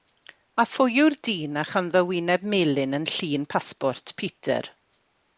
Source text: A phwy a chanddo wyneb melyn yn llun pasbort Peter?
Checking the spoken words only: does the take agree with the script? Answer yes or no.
no